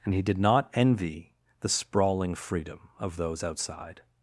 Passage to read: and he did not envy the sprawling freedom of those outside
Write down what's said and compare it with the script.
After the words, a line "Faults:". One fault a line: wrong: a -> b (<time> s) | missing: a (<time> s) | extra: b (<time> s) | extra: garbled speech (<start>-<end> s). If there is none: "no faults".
and he did not envy the sprawling freedom of those outside
Faults:
no faults